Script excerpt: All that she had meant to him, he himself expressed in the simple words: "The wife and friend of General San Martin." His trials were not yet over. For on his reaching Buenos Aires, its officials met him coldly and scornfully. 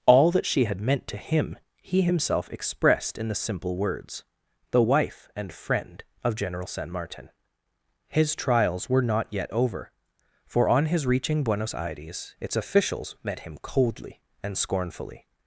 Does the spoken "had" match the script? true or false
true